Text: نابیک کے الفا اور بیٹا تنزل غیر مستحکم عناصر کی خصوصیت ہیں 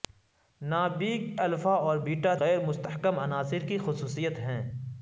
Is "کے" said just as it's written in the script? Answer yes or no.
no